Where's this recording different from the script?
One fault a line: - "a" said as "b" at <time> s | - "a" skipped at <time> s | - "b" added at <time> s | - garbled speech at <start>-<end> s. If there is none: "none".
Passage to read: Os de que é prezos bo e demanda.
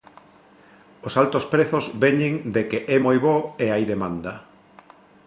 - "altos prezos veñen" added at 1.2 s
- "prezos" said as "moi" at 3.0 s
- "hai" added at 3.7 s